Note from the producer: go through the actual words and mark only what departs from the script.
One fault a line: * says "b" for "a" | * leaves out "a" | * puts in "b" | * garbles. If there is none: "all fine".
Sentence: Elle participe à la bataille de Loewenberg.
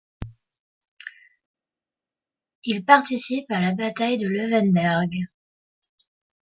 * says "Il" for "Elle"